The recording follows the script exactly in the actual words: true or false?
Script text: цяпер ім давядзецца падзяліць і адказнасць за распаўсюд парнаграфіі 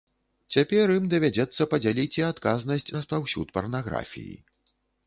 false